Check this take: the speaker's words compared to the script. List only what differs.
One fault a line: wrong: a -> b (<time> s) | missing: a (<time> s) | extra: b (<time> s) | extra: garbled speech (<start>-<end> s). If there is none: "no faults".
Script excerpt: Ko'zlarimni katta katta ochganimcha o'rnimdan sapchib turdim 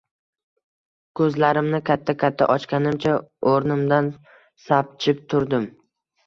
no faults